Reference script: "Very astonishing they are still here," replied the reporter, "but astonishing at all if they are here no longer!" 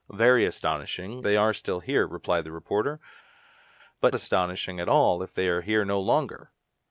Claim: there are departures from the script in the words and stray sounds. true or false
false